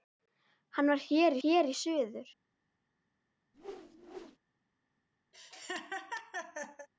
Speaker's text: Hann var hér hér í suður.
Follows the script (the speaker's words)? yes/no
yes